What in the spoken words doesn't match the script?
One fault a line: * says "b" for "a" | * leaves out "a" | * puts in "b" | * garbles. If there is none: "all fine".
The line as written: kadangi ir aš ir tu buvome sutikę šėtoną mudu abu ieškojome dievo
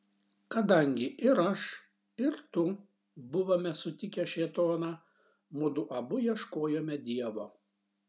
all fine